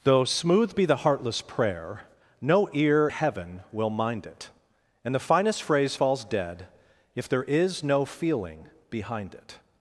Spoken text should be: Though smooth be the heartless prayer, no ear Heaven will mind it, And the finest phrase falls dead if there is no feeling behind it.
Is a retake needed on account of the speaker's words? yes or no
no